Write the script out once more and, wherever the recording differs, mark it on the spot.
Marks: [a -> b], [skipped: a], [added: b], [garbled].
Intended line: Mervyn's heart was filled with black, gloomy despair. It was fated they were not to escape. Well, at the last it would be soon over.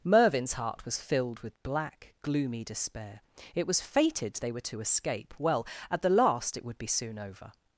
Mervyn's heart was filled with black, gloomy despair. It was fated they were [skipped: not] to escape. Well, at the last it would be soon over.